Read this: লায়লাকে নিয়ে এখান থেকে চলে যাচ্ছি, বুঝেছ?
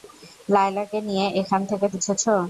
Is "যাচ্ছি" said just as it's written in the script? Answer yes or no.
no